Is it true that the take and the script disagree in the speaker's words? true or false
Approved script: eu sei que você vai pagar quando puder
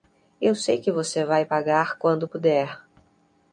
false